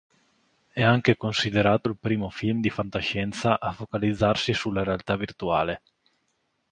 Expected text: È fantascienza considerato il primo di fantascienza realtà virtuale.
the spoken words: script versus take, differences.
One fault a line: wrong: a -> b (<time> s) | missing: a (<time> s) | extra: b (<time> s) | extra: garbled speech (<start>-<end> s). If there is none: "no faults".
wrong: fantascienza -> anche (0.8 s)
extra: film (2.3 s)
extra: a focalizzarsi sulla (3.6 s)